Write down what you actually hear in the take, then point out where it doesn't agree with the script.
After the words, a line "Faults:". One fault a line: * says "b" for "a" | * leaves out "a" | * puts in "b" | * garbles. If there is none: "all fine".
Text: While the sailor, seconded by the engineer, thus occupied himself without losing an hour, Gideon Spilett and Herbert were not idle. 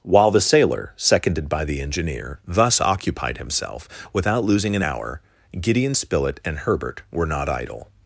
While the sailor, seconded by the engineer, thus occupied himself without losing an hour, Gideon Spilett and Herbert were not idle.
Faults:
all fine